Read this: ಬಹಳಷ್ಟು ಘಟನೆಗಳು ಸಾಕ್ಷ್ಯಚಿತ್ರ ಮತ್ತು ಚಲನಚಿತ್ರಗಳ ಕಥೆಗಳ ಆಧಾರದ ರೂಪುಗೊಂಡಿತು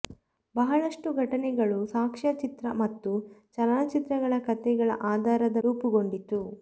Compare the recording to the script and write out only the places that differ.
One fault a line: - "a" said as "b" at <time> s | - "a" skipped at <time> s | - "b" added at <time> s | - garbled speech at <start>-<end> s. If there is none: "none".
none